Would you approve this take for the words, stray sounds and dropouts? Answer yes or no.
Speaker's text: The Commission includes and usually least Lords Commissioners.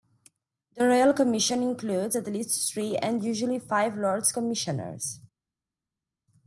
no